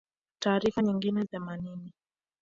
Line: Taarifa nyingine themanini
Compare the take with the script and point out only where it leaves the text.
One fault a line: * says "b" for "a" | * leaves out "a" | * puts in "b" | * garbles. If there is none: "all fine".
all fine